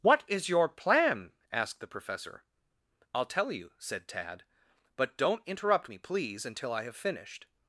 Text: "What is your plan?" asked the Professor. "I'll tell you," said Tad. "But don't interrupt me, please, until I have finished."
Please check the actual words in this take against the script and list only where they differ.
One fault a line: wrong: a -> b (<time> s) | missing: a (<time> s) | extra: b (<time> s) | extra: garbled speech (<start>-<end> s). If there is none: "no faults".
no faults